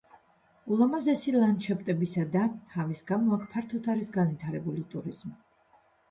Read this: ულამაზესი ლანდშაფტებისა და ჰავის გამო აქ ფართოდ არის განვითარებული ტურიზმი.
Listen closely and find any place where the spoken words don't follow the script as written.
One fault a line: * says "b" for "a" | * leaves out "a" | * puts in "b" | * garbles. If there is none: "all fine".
all fine